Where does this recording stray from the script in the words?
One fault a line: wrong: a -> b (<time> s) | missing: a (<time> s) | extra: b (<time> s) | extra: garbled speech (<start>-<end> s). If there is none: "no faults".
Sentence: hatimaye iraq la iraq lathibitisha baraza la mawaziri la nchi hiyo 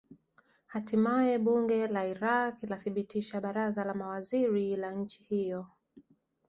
wrong: iraq -> bunge (1.4 s)